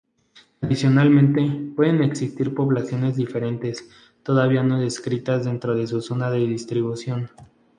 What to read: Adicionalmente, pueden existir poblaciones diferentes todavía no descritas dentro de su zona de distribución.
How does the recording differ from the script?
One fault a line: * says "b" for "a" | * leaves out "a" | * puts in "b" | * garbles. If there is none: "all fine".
all fine